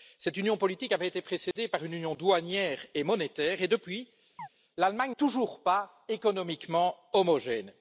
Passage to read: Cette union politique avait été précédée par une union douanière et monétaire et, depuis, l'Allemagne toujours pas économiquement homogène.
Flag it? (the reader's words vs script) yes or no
no